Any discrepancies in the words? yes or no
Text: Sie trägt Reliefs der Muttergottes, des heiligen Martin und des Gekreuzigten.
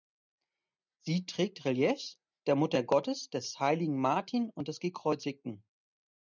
no